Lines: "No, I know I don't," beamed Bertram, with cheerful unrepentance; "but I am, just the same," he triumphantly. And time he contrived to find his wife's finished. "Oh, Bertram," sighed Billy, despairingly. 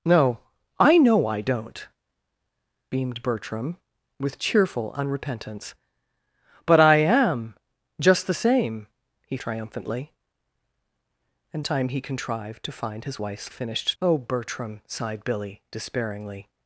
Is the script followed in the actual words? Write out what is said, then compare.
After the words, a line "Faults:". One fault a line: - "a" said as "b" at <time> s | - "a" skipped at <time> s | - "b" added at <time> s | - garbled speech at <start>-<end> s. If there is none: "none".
"No, I know I don't," beamed Bertram, with cheerful unrepentance; "but I am, just the same," he triumphantly. And time he contrived to find his wife's finished. "Oh, Bertram," sighed Billy, despairingly.
Faults:
none